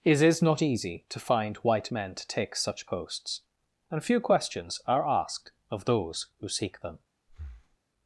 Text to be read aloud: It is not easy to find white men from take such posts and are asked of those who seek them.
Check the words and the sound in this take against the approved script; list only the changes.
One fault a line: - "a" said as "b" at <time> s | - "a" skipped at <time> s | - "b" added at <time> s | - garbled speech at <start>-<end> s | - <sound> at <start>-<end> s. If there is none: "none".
- "from" said as "to" at 2.1 s
- "few questions" added at 4.0 s
- breath at 7.3-7.8 s